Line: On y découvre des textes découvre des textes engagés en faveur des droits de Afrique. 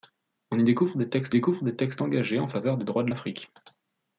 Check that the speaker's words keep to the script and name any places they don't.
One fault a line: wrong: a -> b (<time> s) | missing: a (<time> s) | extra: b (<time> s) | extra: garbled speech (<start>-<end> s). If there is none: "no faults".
no faults